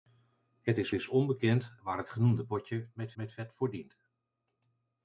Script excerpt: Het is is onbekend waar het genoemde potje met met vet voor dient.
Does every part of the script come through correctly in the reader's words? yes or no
yes